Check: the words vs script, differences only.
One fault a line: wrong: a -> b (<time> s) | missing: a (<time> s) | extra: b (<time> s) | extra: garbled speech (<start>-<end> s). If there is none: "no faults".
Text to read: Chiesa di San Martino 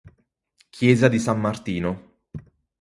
no faults